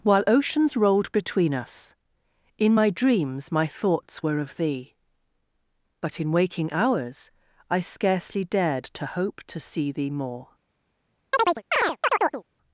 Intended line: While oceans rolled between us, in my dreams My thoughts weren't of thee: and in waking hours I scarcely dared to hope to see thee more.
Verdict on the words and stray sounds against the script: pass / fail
fail